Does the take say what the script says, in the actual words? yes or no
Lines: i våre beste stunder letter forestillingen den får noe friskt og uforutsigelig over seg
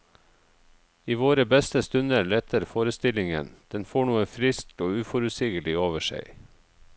yes